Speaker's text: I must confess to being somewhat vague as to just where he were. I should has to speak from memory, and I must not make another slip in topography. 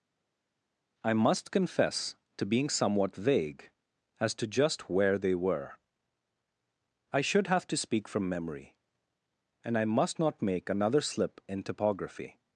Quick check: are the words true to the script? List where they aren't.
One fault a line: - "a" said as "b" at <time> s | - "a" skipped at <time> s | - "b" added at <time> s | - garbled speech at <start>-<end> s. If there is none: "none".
- "he" said as "they" at 5.2 s
- "has" said as "have" at 7.5 s